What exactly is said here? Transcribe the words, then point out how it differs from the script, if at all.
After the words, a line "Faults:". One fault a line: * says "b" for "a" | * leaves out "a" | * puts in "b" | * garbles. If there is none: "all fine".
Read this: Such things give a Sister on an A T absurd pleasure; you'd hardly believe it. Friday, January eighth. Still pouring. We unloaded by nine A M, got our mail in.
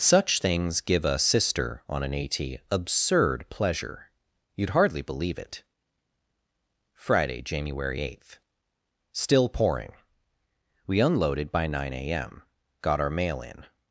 Such things give a Sister on an A T absurd pleasure; you'd hardly believe it. Friday, January eighth. Still pouring. We unloaded by nine A M, got our mail in.
Faults:
all fine